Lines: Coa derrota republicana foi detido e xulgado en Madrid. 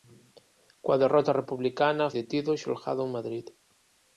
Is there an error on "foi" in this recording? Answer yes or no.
yes